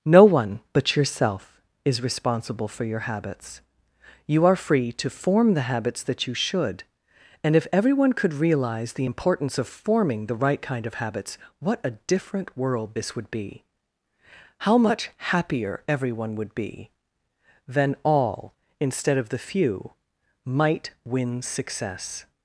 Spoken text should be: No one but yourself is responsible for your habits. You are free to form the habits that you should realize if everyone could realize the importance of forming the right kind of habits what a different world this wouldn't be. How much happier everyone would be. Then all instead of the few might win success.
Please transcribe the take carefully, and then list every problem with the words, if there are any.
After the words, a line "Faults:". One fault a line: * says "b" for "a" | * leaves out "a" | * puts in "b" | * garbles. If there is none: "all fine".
No one but yourself is responsible for your habits. You are free to form the habits that you should and if everyone could realize the importance of forming the right kind of habits what a different world this would be. How much happier everyone would be. Then all instead of the few might win success.
Faults:
* says "and" for "realize"
* says "would" for "wouldn't"